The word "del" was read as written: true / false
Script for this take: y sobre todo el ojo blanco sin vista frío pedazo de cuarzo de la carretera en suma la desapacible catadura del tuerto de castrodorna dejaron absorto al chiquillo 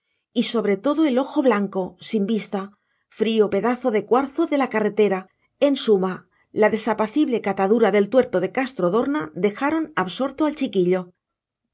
true